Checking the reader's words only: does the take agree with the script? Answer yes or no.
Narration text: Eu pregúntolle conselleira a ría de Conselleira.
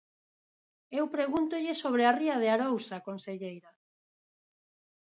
no